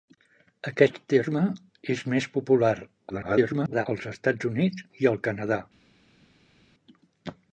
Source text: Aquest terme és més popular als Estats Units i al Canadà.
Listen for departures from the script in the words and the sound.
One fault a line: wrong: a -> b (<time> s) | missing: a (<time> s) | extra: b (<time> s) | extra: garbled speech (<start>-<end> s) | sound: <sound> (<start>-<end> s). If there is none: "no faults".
extra: garbled speech (3.1-3.9 s)